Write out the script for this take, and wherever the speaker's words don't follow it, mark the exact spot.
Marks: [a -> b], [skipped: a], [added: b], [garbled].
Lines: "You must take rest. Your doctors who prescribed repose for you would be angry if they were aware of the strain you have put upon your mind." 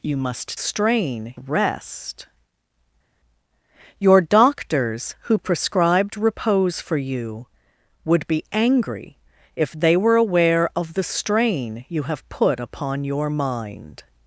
"You must [take -> strain] rest. Your doctors who prescribed repose for you would be angry if they were aware of the strain you have put upon your mind."